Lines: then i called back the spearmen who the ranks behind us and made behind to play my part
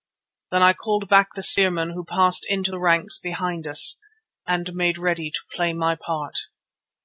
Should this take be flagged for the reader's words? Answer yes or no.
yes